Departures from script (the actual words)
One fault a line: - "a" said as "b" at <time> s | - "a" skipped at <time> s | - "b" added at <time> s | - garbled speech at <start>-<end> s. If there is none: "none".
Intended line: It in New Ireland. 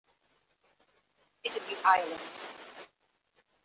none